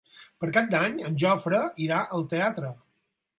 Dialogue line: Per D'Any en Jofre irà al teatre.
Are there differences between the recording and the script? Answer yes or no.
yes